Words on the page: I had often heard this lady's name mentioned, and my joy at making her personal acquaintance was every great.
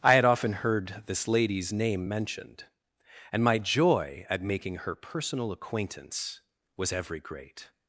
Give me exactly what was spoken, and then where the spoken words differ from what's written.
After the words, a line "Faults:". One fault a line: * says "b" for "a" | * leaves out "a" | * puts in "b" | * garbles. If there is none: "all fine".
I had often heard this lady's name mentioned, and my joy at making her personal acquaintance was every great.
Faults:
all fine